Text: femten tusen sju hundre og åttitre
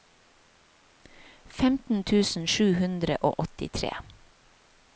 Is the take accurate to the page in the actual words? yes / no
yes